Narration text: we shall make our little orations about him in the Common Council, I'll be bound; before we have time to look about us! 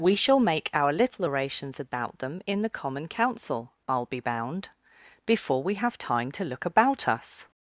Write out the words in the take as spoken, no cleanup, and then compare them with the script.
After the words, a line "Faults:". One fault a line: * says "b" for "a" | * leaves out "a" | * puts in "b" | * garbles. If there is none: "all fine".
we shall make our little orations about them in the Common Council, I'll be bound; before we have time to look about us!
Faults:
* says "them" for "him"